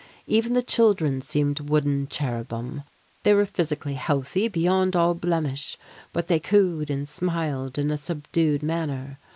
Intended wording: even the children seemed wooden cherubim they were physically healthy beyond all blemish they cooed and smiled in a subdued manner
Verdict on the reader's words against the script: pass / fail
fail